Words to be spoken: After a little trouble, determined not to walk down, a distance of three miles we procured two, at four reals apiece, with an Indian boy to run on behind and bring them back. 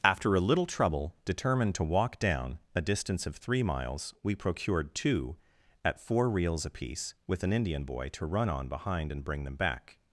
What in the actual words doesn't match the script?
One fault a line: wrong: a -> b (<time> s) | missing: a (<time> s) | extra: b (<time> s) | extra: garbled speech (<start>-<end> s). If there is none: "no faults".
missing: not (1.8 s)